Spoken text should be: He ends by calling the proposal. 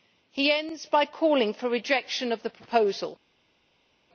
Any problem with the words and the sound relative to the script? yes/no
yes